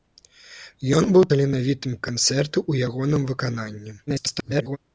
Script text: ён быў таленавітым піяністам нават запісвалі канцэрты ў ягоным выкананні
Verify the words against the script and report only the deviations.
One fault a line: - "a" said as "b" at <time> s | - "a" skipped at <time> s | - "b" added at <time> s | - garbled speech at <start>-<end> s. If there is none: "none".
- "піяністам нават запісвалі" skipped at 2.0 s
- garbled speech at 4.1-4.8 s